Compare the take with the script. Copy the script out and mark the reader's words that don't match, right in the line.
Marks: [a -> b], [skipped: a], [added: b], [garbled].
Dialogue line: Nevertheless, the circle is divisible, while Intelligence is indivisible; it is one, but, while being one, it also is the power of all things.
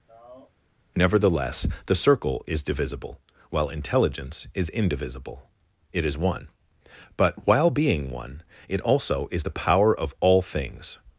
Nevertheless, the circle is divisible, while Intelligence is indivisible; it is one, but, while being one, it also is the power of all things.